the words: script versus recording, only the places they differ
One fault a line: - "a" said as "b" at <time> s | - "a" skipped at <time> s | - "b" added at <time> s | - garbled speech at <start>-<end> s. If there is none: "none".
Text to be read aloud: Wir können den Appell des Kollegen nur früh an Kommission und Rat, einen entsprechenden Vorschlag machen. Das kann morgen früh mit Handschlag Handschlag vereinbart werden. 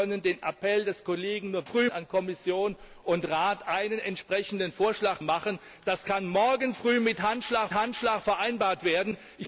none